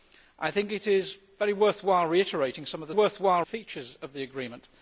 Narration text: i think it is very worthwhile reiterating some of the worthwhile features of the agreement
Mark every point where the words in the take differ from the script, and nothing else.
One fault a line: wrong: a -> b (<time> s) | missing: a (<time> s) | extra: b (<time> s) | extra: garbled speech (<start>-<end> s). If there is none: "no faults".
no faults